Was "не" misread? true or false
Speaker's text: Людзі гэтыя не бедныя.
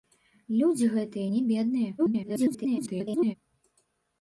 false